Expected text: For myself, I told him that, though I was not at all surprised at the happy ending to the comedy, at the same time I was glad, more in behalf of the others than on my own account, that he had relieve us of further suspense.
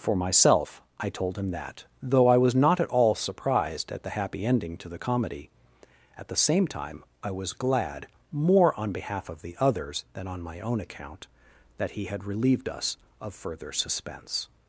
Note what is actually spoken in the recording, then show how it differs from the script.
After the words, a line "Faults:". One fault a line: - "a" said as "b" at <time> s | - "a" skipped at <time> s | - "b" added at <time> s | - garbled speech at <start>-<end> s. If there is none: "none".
For myself, I told him that, though I was not at all surprised at the happy ending to the comedy, at the same time I was glad, more on behalf of the others than on my own account, that he had relieved us of further suspense.
Faults:
- "in" said as "on" at 8.8 s
- "relieve" said as "relieved" at 12.2 s